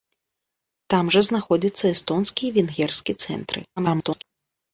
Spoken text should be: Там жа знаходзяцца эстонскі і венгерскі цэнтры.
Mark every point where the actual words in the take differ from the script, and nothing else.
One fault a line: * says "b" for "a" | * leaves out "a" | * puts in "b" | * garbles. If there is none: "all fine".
* garbles